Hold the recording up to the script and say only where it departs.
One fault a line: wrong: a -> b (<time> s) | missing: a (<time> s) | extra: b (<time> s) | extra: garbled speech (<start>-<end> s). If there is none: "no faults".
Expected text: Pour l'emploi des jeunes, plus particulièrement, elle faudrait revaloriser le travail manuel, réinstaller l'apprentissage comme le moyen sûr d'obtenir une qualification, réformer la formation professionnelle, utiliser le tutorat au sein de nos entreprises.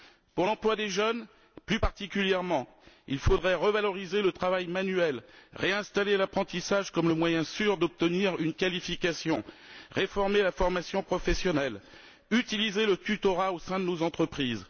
wrong: elle -> il (3.1 s)